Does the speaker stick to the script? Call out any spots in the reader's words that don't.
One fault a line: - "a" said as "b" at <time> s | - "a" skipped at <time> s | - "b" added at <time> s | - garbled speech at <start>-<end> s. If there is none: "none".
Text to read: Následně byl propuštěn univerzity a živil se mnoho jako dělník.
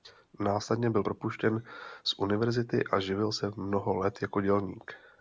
- "z" added at 2.0 s
- "let" added at 4.0 s